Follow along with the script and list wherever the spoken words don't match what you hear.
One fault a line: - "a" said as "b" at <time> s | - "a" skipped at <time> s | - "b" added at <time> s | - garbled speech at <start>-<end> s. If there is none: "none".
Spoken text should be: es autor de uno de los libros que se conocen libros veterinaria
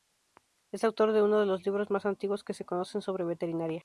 - "más antiguos" added at 1.9 s
- "libros" said as "sobre" at 3.0 s